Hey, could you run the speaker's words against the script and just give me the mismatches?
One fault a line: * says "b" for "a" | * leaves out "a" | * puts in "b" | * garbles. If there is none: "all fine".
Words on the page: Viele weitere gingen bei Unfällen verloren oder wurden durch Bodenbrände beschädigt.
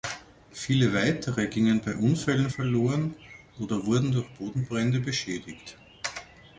all fine